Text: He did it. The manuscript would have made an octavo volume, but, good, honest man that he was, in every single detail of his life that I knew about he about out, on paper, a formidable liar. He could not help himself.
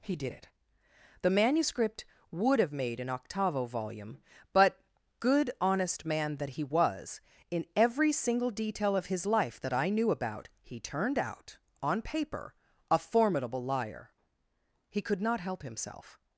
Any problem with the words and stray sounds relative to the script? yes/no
yes